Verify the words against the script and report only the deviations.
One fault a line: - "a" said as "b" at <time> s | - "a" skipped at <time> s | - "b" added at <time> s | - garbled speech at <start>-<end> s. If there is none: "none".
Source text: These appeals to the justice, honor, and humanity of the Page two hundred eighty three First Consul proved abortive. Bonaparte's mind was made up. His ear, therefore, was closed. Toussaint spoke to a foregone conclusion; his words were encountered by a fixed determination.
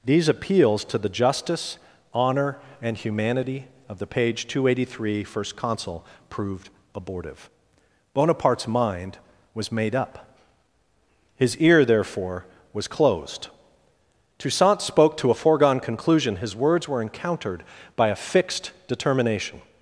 none